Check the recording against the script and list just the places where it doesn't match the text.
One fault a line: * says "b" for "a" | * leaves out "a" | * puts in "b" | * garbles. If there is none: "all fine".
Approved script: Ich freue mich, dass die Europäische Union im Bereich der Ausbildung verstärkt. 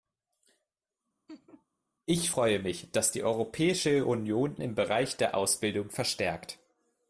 all fine